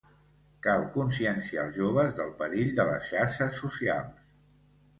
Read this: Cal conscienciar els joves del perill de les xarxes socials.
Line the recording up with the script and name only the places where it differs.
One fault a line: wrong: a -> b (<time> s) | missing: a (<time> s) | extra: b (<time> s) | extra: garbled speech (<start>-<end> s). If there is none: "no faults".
no faults